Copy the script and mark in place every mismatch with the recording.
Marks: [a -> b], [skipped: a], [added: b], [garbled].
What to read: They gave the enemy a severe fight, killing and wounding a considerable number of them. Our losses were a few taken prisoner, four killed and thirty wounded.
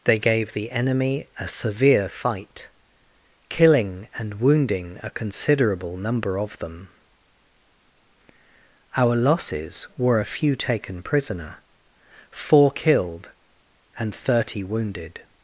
They gave the enemy a severe fight, killing and wounding a considerable number of them. Our losses were a few taken prisoner, four killed and thirty wounded.